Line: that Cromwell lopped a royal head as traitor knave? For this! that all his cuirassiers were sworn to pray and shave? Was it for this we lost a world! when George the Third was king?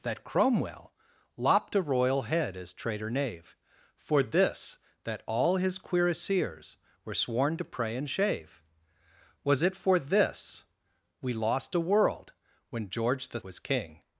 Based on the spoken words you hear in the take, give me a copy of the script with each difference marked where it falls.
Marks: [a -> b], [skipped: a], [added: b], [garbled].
that Cromwell lopped a royal head as traitor knave? For this! that all his cuirassiers were sworn to pray and shave? Was it for this we lost a world! when George the [skipped: Third] was king?